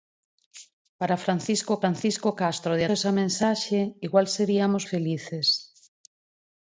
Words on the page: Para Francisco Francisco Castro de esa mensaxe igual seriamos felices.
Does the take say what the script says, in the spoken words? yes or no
yes